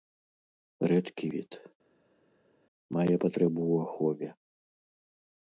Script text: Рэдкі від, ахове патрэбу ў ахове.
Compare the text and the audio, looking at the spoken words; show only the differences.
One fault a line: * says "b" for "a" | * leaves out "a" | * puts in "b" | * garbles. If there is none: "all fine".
* says "мае" for "ахове"